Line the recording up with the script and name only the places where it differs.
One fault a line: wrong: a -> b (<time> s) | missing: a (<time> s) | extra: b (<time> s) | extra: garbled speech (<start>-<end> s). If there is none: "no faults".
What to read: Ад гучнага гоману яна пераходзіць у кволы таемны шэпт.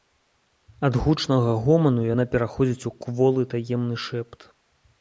no faults